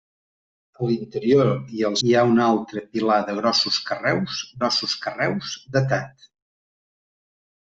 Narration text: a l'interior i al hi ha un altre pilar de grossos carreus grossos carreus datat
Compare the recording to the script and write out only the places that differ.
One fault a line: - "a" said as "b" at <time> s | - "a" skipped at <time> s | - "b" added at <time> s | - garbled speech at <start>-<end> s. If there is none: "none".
none